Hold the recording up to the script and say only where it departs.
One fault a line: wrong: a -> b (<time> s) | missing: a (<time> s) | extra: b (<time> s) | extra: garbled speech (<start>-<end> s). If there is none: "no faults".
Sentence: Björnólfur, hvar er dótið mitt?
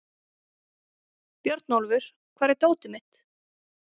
no faults